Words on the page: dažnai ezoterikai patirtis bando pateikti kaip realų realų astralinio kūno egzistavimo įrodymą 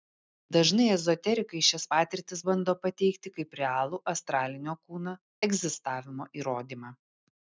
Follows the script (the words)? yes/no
no